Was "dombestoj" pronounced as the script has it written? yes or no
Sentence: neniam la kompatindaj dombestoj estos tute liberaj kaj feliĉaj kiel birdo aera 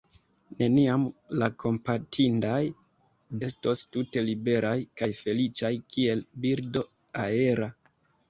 no